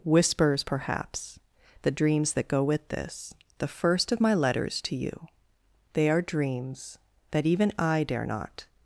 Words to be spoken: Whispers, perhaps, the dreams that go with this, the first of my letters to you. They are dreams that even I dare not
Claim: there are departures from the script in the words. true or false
false